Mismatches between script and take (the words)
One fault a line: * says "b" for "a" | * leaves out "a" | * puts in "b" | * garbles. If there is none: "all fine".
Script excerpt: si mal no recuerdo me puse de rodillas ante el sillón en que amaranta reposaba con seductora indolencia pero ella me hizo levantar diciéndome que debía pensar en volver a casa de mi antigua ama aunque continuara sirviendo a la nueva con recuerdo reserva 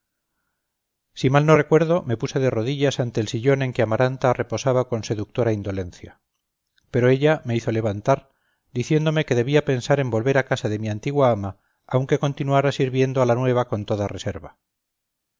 * says "toda" for "recuerdo"